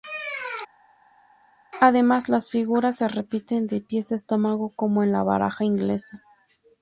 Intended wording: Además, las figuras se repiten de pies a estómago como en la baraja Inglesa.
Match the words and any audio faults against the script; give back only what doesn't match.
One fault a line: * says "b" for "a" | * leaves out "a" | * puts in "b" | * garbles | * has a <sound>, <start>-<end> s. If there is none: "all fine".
all fine